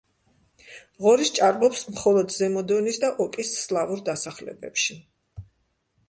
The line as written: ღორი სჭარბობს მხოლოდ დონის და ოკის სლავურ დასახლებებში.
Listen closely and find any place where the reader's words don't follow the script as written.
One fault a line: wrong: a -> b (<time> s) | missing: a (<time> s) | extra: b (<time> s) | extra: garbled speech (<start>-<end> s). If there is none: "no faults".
extra: ზემო (2.3 s)